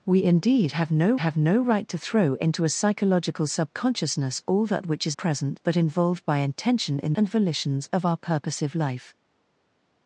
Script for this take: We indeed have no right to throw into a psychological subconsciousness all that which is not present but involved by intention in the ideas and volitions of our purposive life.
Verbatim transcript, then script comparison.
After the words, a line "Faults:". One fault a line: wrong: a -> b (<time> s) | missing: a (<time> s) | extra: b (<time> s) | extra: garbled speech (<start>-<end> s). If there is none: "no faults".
We indeed have no have no right to throw into a psychological subconsciousness all that which is present but involved by intention in and volitions of our purposive life.
Faults:
extra: have no (1.2 s)
missing: not (5.2 s)
missing: the ideas (7.1 s)